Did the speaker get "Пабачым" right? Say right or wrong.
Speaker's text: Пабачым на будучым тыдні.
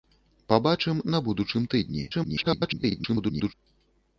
right